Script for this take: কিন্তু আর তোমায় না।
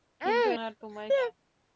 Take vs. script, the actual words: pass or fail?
pass